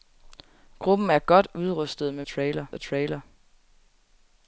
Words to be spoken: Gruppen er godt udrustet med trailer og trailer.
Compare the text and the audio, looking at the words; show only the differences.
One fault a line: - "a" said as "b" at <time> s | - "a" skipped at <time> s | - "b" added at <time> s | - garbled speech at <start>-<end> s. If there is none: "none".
none